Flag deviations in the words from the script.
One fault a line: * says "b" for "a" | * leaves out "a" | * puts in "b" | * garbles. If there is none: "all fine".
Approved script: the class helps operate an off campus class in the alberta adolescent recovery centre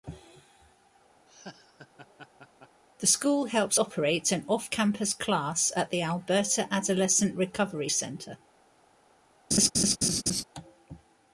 * says "school" for "class"
* says "at" for "in"